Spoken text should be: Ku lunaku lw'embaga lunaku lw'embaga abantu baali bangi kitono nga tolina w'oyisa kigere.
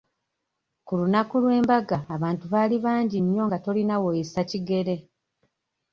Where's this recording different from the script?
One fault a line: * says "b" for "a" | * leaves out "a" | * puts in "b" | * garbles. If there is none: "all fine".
* leaves out "lunaku lw'embaga"
* says "nnyo" for "kitono"